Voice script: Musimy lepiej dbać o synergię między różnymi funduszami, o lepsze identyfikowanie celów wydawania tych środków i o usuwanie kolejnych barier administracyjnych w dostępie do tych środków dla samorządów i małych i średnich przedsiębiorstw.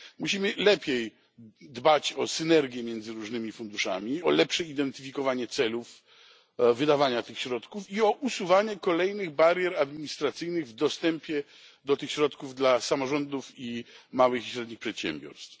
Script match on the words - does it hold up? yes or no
yes